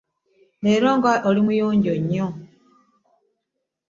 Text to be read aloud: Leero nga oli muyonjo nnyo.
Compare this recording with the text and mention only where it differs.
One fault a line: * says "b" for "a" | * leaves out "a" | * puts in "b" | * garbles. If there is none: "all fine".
all fine